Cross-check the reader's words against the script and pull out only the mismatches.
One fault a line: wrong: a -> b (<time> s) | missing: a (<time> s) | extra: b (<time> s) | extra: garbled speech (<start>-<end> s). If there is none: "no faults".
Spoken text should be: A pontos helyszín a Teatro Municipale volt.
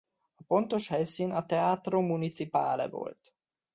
no faults